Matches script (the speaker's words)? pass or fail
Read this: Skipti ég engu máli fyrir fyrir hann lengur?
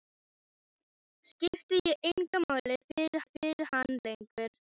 pass